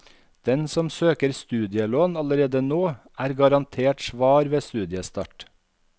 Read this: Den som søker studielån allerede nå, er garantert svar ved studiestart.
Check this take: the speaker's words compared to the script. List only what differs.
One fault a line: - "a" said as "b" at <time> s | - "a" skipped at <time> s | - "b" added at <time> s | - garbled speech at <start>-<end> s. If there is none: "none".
none